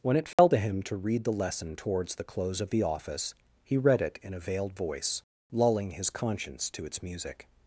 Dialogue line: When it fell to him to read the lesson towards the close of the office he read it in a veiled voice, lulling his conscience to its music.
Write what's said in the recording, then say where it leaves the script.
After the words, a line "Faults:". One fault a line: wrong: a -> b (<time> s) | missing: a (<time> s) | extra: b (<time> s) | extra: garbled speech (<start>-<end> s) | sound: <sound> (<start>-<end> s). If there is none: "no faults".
When it fell to him to read the lesson towards the close of the office he read it in a veiled voice, lulling his conscience to its music.
Faults:
sound: dropout (0.3-0.4 s)